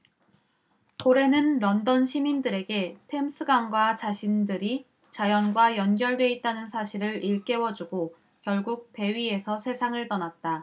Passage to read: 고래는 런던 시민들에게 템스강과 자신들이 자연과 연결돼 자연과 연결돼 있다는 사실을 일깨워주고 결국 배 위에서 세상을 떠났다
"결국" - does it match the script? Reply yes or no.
yes